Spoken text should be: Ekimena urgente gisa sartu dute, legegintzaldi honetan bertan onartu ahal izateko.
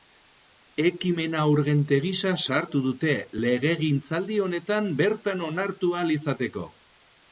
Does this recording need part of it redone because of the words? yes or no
no